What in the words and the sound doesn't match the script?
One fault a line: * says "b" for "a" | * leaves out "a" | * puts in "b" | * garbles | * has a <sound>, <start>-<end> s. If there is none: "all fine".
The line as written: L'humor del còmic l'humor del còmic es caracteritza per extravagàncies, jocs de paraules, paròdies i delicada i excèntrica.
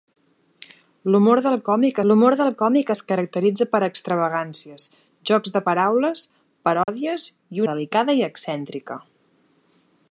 * has a dropout, 6.8-6.9 s